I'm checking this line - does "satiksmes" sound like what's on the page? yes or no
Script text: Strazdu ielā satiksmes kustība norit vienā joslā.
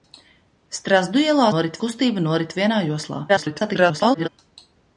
no